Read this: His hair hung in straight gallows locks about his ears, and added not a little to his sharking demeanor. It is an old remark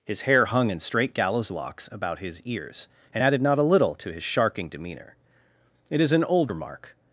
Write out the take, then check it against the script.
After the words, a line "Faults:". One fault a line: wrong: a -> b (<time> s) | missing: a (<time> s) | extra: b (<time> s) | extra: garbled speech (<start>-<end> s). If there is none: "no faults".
His hair hung in straight gallows locks about his ears, and added not a little to his sharking demeanor. It is an old remark
Faults:
no faults